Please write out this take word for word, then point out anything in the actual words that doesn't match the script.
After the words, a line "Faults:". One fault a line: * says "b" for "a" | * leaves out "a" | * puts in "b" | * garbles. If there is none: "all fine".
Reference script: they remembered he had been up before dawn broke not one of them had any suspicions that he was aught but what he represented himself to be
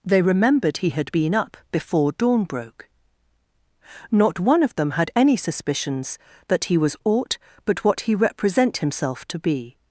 they remembered he had been up before dawn broke not one of them had any suspicions that he was aught but what he represent himself to be
Faults:
* says "represent" for "represented"